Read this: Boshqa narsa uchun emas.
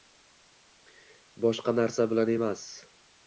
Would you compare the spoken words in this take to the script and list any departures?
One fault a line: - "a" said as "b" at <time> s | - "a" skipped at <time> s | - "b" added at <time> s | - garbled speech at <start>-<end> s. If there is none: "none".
- "uchun" said as "bilan" at 2.1 s